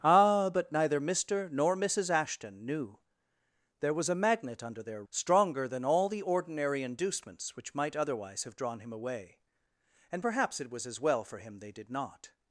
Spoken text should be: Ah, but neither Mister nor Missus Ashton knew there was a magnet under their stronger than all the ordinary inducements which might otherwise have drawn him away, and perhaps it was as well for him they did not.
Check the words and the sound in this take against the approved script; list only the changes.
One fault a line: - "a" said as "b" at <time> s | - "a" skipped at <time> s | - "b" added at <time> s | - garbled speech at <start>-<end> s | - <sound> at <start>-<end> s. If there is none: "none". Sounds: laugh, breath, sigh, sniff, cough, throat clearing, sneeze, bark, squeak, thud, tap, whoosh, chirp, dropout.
none